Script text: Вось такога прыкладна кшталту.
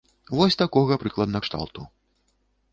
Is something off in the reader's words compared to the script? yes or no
no